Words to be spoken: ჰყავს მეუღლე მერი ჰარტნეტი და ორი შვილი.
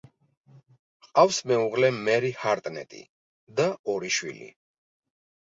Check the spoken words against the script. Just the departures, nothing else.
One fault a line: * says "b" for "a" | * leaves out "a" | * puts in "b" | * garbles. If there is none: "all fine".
all fine